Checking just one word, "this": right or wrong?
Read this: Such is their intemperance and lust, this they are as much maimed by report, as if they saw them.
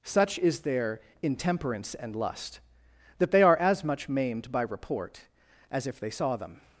wrong